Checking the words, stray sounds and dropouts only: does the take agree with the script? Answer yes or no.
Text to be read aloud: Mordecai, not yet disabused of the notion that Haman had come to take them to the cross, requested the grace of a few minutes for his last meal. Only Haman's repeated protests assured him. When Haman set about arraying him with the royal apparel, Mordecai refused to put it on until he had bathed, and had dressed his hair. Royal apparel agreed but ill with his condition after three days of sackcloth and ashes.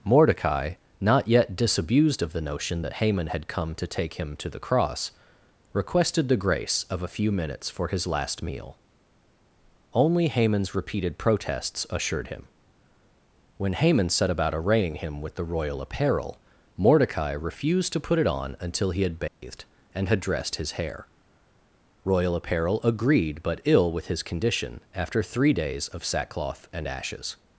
no